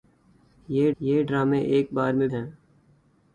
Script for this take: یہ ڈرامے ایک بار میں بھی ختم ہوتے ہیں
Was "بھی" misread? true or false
true